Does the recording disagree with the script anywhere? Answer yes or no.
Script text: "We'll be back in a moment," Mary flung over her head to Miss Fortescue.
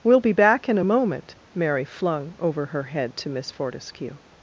no